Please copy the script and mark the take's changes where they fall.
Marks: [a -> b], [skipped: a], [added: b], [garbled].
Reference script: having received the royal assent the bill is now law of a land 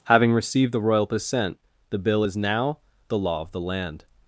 having received the royal assent the bill is now [added: the] law of [a -> the] land